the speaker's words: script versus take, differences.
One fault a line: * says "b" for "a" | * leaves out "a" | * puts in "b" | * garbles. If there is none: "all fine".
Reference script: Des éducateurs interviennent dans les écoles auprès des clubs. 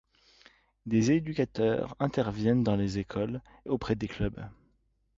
all fine